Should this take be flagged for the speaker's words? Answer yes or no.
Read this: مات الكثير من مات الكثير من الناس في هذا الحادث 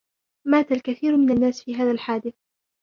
yes